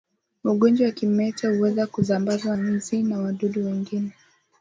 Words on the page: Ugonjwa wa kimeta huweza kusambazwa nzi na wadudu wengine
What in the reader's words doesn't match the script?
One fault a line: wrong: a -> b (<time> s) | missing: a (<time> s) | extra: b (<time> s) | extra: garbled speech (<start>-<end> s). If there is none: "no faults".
no faults